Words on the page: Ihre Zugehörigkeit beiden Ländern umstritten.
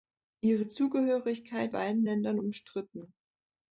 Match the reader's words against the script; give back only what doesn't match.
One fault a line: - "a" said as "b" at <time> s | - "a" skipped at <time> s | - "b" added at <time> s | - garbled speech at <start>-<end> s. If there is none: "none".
none